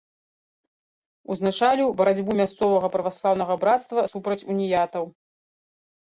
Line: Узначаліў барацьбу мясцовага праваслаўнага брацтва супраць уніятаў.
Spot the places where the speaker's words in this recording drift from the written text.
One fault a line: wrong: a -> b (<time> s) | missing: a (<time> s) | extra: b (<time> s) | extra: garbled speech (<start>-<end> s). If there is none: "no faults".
no faults